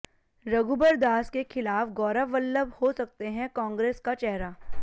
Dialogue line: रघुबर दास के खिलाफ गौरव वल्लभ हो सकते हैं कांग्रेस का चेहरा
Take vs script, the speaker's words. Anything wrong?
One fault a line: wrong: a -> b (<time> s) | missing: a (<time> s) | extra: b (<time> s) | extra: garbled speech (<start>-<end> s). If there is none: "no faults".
no faults